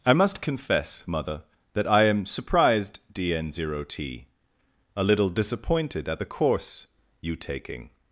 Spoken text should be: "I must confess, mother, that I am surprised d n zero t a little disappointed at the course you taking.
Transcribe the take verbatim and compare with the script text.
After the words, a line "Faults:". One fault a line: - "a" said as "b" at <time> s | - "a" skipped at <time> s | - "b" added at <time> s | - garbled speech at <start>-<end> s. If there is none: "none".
"I must confess, mother, that I am surprised d n zero t a little disappointed at the course you taking.
Faults:
none